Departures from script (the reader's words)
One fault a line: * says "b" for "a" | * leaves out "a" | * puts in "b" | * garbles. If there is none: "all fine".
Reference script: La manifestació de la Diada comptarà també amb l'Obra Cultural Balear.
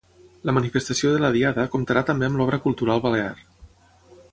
all fine